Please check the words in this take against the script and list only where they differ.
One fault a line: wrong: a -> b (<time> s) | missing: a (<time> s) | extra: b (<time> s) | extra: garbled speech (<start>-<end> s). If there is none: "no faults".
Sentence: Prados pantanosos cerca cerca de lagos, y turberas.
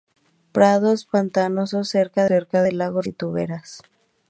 no faults